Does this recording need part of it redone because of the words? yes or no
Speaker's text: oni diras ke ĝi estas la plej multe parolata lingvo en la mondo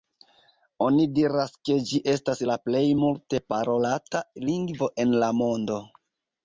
no